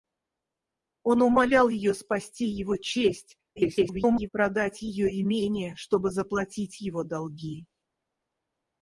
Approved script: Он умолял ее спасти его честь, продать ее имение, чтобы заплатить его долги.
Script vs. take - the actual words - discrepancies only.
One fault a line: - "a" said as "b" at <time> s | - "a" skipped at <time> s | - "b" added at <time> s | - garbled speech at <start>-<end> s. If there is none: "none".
- garbled speech at 3.6-4.3 s